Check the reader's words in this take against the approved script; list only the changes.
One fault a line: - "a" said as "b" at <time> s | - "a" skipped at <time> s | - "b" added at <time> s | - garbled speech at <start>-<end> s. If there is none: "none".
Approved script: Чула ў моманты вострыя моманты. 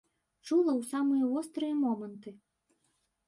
- "моманты" said as "самыя" at 0.9 s